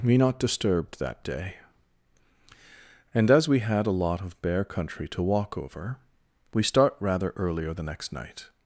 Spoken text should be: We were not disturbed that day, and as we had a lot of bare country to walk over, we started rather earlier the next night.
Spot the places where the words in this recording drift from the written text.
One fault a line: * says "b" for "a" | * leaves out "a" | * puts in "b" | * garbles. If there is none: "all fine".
* leaves out "were"
* says "start" for "started"